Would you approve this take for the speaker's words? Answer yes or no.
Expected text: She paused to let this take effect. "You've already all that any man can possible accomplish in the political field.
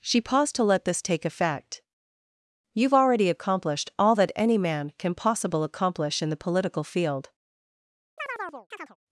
no